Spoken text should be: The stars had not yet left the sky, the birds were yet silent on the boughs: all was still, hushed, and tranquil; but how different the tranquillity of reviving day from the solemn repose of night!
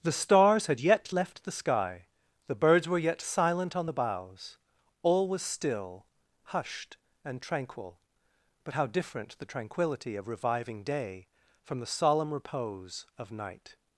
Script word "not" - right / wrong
wrong